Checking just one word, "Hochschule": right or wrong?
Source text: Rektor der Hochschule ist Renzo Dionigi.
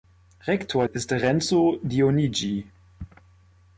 wrong